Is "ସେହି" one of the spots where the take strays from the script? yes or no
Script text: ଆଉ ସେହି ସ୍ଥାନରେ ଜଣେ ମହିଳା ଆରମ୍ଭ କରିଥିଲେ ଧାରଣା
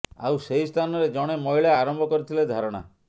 no